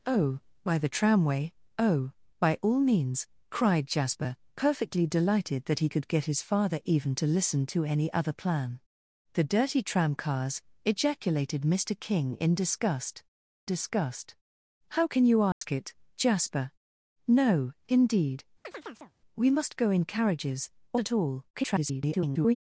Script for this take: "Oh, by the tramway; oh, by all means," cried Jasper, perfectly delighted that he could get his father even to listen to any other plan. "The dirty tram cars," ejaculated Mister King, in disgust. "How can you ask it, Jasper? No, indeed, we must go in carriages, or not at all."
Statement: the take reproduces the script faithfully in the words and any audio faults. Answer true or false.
false